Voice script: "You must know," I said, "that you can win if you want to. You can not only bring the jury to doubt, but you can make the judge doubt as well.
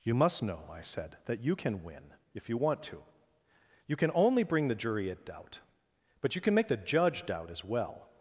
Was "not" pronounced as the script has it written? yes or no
no